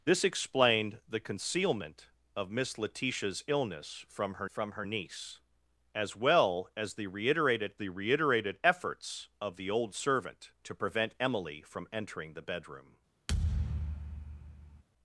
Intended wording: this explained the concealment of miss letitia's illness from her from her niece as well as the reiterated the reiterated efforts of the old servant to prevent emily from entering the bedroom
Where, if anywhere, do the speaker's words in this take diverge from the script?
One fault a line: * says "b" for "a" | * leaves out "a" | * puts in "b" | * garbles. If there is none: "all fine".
all fine